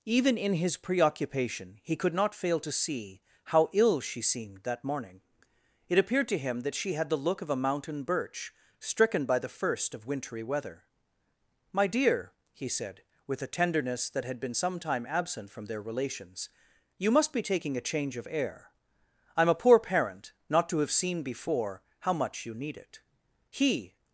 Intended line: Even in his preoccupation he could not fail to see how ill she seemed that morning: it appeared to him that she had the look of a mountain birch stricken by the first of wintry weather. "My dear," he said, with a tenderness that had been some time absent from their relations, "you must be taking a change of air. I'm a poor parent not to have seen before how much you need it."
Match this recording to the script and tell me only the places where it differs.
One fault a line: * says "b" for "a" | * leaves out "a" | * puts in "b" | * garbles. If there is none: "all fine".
* puts in "He"